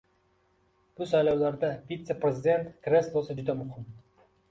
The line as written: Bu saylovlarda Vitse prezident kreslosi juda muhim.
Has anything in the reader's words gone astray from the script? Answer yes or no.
no